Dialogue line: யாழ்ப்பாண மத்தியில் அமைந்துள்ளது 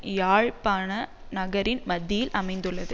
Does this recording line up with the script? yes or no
no